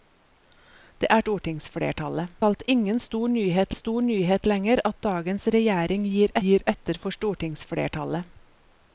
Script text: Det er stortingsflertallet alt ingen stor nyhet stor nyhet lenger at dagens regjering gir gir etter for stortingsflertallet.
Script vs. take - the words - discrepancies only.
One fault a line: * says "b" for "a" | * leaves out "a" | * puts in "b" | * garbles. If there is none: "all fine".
all fine